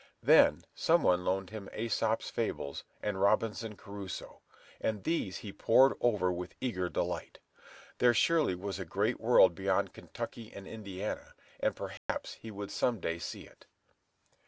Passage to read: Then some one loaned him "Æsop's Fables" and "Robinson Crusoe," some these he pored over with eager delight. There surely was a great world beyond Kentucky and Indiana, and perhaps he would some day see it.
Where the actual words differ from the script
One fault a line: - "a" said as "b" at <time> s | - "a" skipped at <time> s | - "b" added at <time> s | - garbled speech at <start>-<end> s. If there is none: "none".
- "some" said as "and" at 4.8 s